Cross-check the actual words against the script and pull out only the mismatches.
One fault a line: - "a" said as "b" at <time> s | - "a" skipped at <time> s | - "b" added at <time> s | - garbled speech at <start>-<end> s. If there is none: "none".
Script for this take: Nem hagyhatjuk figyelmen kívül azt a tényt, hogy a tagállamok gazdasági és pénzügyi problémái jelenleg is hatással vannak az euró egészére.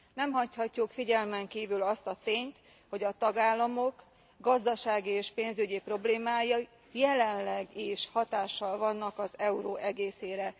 none